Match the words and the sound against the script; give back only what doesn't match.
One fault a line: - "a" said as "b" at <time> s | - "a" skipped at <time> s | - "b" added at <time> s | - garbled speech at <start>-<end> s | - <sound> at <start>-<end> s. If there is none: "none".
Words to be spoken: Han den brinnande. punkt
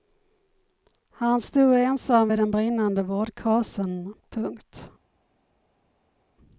- "stod ensam vid" added at 1.4 s
- "vårdkasen" added at 3.0 s